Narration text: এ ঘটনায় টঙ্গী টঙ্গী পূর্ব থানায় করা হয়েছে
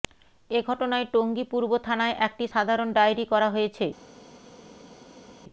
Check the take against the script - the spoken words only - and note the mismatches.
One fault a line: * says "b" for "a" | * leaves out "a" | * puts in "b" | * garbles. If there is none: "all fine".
* leaves out "টঙ্গী"
* puts in "একটি সাধারণ ডায়েরি"